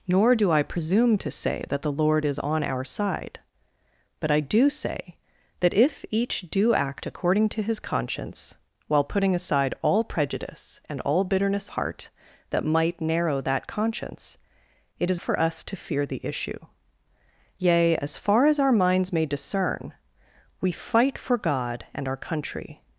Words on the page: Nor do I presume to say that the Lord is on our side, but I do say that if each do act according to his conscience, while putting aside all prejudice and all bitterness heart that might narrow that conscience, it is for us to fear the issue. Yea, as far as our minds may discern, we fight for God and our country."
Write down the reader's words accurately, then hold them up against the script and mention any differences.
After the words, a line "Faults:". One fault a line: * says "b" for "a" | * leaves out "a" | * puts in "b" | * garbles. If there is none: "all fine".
Nor do I presume to say that the Lord is on our side, but I do say that if each do act according to his conscience, while putting aside all prejudice and all bitterness heart that might narrow that conscience, it is for us to fear the issue. Yea, as far as our minds may discern, we fight for God and our country."
Faults:
all fine